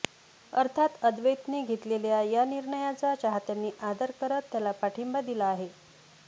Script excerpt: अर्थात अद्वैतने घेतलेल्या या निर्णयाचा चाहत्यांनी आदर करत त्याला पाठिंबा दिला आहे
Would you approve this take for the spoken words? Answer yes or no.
yes